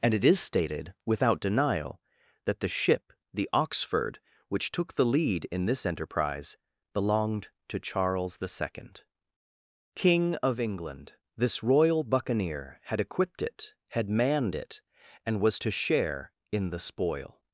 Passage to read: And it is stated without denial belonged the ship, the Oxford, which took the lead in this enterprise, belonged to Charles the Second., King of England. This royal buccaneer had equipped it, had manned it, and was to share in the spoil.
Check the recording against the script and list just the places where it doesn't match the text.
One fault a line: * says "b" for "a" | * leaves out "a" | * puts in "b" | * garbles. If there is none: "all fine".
* says "that" for "belonged"